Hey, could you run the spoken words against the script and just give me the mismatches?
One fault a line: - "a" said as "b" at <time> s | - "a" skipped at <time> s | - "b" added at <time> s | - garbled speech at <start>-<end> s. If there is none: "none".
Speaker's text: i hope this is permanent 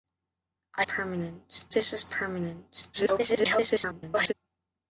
- "hope" said as "permanent" at 0.8 s
- garbled speech at 2.9-4.3 s